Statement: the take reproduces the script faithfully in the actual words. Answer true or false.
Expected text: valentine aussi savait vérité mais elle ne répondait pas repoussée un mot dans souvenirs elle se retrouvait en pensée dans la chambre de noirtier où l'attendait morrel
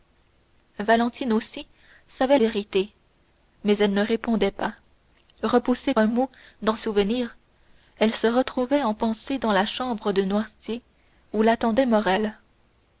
true